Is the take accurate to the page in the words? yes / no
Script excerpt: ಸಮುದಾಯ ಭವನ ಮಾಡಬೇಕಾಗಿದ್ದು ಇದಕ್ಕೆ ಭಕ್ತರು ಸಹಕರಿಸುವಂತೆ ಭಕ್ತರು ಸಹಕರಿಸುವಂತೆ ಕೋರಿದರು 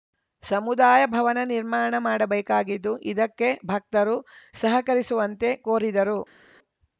no